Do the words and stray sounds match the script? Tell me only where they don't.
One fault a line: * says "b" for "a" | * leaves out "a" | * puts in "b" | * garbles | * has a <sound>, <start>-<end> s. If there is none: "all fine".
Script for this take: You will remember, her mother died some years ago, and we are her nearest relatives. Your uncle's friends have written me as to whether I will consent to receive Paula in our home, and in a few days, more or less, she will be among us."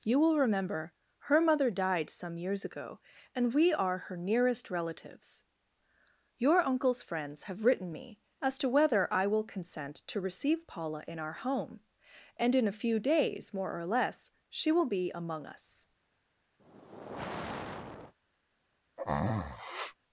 * has a sigh, 16.6-18.1 s
* has a sneeze, 19.0-20.0 s